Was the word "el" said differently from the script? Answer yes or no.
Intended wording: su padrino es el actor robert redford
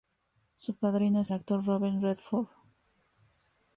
yes